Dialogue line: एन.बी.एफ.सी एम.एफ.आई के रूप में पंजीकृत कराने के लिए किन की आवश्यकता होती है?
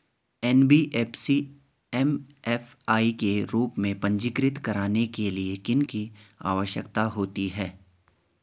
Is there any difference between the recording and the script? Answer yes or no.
no